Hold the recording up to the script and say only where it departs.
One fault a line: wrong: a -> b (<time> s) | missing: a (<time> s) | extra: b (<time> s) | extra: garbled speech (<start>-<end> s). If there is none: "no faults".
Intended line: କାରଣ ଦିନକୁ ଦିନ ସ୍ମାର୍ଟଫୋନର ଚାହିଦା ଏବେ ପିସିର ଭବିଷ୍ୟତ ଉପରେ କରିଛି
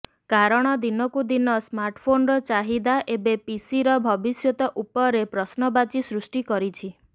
extra: ପ୍ରଶ୍ନବାଚୀ ସୃଷ୍ଟି (5.3 s)